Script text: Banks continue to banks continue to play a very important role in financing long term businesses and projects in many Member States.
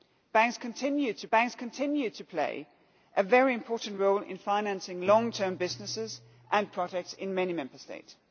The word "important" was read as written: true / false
true